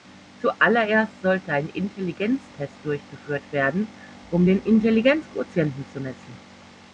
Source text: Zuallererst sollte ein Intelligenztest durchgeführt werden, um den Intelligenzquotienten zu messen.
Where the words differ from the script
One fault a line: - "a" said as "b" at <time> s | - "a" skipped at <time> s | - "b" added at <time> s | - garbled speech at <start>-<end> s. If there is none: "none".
none